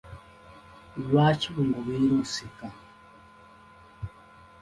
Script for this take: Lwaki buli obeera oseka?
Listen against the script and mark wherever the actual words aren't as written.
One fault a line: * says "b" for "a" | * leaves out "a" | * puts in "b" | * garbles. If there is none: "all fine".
all fine